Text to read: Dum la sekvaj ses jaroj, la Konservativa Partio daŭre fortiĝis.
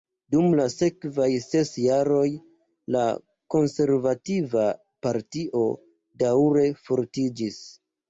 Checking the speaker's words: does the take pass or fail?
pass